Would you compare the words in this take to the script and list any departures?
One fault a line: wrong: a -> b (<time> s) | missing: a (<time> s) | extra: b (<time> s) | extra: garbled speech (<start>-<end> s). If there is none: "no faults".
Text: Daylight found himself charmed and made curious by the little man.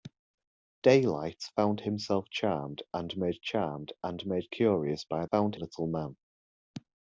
extra: charmed and made (3.4 s)
wrong: the -> found (5.3 s)